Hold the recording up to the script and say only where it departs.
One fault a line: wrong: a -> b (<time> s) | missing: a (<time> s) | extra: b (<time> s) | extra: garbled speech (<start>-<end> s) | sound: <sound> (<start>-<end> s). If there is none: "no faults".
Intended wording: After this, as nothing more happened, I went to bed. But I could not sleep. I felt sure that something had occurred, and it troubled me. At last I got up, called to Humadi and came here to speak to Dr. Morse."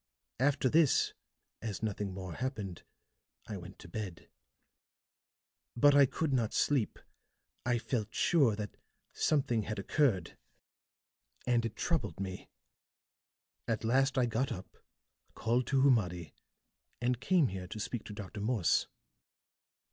no faults